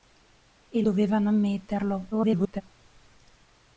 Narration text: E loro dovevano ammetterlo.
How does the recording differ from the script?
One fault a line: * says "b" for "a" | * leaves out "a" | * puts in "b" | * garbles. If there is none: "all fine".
* leaves out "loro"
* garbles